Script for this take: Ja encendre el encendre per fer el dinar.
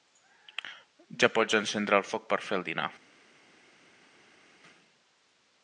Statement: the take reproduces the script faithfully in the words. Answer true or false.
false